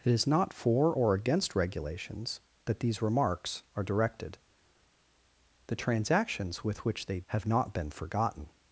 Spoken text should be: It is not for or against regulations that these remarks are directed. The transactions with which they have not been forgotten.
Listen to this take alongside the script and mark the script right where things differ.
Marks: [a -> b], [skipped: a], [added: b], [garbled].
It is not for or against regulations that these remarks are directed. The transactions with which they have not been forgotten.